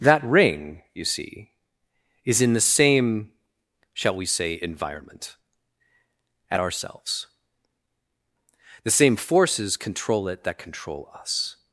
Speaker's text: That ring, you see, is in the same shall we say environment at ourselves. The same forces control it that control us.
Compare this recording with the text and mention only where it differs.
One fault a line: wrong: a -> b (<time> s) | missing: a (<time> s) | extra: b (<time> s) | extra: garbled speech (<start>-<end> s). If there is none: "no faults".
no faults